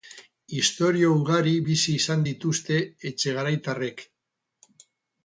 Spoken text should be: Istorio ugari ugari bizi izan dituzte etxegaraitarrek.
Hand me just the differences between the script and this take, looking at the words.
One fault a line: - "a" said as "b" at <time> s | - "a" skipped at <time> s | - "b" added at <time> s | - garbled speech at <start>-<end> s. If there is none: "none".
- "ugari" skipped at 1.5 s